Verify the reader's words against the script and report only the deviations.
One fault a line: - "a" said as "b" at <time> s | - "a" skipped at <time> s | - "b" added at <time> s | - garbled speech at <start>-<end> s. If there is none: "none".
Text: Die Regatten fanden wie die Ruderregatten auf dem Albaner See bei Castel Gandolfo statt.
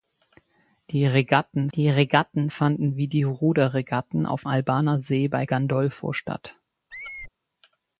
- "die Regatten" added at 1.7 s
- "dem" skipped at 4.5 s
- "Castel" skipped at 5.5 s